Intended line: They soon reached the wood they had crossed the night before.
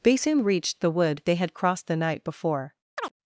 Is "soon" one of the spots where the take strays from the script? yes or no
no